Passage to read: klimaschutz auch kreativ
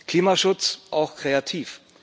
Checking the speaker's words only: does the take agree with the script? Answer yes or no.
yes